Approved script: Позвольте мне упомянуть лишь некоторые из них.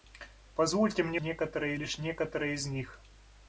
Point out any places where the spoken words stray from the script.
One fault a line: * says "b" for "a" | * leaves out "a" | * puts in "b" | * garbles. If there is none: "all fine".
* says "некоторые" for "упомянуть"